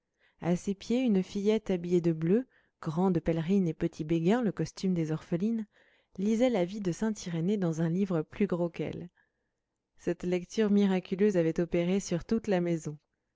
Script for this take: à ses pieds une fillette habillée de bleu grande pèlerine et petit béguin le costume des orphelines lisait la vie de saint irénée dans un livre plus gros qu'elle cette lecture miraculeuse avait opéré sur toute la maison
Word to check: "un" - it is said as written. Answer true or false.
true